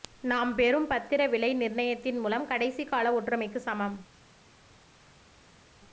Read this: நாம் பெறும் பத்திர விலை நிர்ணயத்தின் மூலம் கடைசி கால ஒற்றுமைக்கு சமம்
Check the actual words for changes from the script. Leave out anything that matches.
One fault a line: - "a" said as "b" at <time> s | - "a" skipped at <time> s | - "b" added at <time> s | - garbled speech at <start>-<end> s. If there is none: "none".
none